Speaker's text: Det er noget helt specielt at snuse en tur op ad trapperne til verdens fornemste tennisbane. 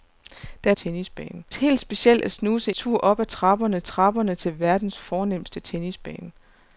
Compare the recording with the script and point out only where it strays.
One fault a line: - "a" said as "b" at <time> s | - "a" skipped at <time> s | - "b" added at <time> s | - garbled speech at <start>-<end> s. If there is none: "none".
- "noget" said as "tennisbane" at 0.7 s
- "en" skipped at 2.7 s
- "trapperne" added at 3.8 s